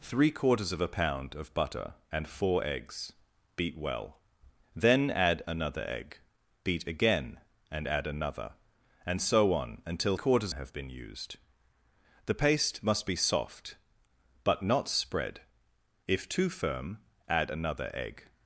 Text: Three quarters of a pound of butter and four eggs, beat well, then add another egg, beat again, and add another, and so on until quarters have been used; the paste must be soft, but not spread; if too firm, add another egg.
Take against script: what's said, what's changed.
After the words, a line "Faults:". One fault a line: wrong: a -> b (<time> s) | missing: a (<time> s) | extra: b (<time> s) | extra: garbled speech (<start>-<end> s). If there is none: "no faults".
Three quarters of a pound of butter and four eggs, beat well, then add another egg, beat again, and add another, and so on until quarters have been used; the paste must be soft, but not spread; if too firm, add another egg.
Faults:
no faults